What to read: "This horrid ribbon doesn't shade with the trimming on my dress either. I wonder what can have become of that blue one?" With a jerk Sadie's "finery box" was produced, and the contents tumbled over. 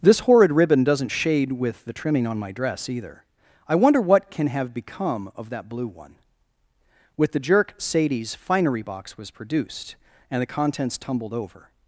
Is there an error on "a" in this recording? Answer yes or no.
yes